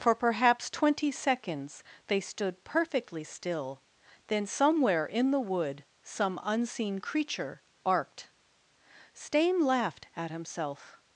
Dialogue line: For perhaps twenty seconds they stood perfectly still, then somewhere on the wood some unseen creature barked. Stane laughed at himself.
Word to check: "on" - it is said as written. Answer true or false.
false